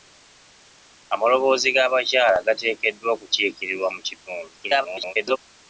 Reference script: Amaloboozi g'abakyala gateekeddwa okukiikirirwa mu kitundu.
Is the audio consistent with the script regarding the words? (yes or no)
no